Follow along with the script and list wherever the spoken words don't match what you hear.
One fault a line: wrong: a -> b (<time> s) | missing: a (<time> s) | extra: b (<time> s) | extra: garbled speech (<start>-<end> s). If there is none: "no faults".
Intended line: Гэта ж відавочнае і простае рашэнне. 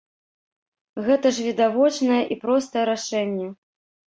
no faults